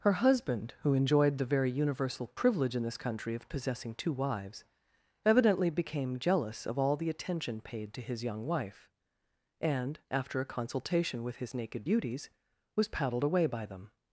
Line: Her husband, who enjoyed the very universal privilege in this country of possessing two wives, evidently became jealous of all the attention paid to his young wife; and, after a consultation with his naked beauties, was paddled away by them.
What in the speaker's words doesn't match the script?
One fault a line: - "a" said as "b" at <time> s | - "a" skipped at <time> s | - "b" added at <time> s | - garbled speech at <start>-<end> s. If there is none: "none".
none